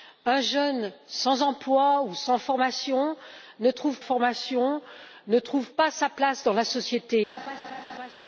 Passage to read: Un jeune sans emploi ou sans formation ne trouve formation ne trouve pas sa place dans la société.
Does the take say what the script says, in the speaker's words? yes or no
yes